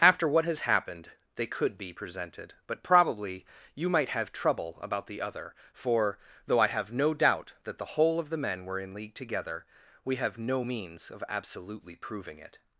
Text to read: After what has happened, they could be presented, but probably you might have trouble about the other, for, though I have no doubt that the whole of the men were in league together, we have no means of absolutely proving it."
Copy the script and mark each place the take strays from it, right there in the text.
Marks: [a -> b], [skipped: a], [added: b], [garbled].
After what has happened, they could be presented, but probably you might have trouble about the other, for, though I have no doubt that the whole of the men were in league together, we have no means of absolutely proving it."